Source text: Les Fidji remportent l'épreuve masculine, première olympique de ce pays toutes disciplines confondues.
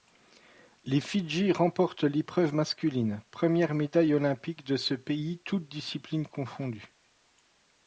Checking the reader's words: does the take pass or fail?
fail